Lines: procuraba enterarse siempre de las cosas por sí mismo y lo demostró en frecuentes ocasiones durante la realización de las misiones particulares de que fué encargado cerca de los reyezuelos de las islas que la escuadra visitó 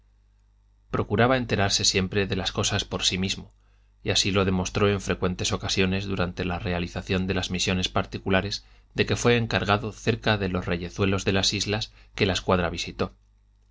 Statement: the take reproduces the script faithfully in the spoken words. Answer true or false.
false